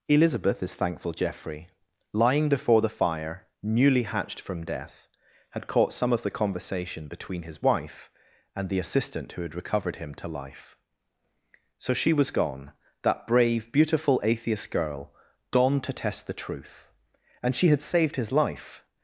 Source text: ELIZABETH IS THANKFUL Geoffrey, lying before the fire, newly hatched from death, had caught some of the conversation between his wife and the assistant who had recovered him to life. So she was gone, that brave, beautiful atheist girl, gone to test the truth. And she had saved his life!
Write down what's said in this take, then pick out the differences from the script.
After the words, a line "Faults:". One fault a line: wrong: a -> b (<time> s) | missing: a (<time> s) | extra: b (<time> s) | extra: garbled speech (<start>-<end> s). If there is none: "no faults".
ELIZABETH IS THANKFUL Geoffrey, lying before the fire, newly hatched from death, had caught some of the conversation between his wife and the assistant who had recovered him to life. So she was gone, that brave, beautiful atheist girl, gone to test the truth. And she had saved his life!
Faults:
no faults